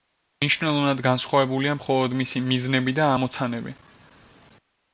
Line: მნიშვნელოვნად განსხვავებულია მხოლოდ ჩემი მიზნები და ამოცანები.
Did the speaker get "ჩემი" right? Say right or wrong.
wrong